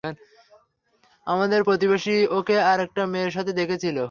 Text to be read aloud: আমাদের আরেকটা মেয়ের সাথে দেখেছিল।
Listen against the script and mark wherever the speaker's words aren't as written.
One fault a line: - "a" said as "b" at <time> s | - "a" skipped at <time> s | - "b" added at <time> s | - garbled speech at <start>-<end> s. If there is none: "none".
- "প্রতিবেশী ওকে" added at 1.6 s